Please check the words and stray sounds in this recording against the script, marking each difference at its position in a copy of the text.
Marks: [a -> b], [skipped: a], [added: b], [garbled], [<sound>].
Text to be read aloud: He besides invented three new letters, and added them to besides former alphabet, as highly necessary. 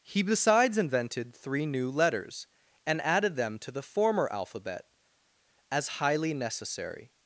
He besides invented three new letters, and added them to [besides -> the] former alphabet, as highly necessary.